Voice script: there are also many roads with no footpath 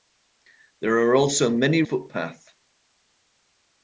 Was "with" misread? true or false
true